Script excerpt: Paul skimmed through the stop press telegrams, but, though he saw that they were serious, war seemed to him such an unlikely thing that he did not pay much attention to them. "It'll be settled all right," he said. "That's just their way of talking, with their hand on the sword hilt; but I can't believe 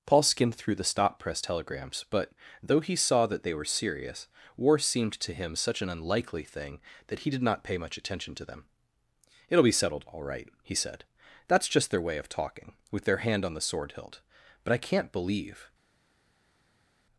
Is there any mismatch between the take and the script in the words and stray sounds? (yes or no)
no